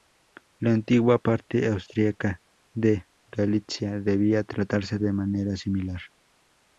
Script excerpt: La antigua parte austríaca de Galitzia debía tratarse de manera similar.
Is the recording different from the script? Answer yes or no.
no